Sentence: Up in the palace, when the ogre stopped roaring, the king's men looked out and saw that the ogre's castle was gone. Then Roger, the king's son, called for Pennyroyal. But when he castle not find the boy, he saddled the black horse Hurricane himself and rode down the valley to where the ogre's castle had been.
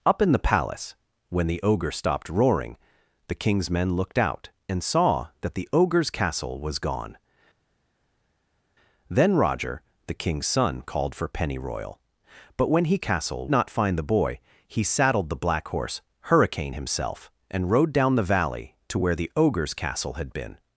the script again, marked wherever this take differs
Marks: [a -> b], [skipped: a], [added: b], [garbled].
Up in the palace, when the ogre stopped roaring, the king's men looked out and saw that the ogre's castle was gone. Then Roger, the king's son, called for Pennyroyal. But when he castle not find the boy, he saddled the black horse Hurricane himself and rode down the valley to where the ogre's castle had been.